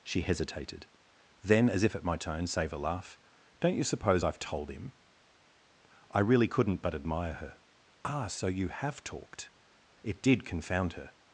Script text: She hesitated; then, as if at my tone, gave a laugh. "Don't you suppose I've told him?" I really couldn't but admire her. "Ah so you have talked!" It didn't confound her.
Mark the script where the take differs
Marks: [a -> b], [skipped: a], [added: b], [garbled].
She hesitated; then, as if at my tone, [gave -> save] a laugh. "Don't you suppose I've told him?" I really couldn't but admire her. "Ah so you have talked!" It [didn't -> did] confound her.